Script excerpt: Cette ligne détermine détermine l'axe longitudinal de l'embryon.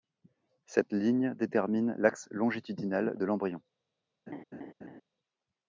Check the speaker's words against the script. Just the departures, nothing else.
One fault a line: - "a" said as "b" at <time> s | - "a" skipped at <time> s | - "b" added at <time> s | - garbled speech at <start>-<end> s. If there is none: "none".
- "détermine" skipped at 1.9 s